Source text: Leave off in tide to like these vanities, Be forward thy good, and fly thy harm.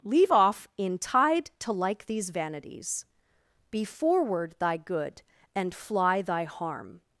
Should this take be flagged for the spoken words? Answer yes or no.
no